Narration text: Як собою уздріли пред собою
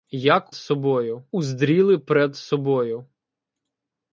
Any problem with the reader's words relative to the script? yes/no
no